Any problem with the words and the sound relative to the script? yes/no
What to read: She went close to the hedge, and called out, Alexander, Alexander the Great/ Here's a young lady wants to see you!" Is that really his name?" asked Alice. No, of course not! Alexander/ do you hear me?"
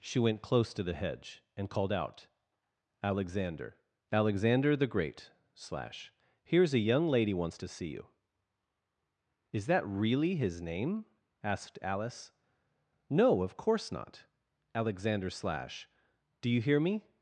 yes